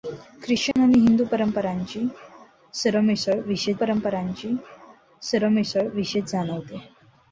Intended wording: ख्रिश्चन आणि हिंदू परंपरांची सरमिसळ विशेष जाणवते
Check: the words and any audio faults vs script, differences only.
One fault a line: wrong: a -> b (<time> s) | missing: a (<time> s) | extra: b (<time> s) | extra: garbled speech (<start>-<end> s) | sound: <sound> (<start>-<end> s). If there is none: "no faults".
sound: dropout (0.7-0.8 s)
extra: परंपरांची सरमिसळ विशेष (3.7 s)